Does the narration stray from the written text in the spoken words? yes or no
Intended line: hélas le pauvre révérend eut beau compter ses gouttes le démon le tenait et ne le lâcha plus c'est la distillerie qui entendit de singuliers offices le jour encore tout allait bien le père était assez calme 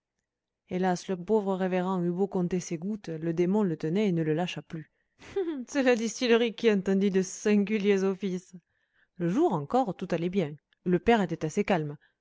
no